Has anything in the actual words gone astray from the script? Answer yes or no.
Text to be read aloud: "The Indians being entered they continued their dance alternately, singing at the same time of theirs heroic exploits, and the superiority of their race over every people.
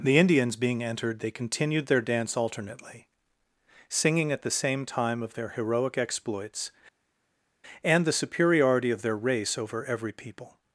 yes